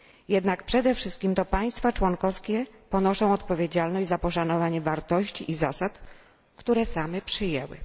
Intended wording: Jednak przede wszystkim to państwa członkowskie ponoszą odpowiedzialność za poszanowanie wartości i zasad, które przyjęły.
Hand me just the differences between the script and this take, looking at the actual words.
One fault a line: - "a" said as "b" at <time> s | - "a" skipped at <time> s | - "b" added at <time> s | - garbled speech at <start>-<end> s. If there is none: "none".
- "same" added at 6.9 s